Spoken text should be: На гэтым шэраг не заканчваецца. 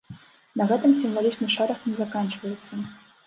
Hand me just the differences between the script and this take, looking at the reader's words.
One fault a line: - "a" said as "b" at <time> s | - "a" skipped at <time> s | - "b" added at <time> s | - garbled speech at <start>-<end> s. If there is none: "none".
- "сімвалічны" added at 1.0 s